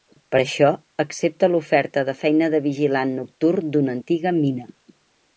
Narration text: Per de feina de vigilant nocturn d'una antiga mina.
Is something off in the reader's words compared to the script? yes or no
yes